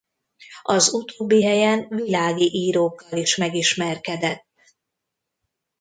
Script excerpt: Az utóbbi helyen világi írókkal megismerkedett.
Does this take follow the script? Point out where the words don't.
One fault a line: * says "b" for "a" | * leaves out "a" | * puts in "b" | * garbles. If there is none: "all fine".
* puts in "is"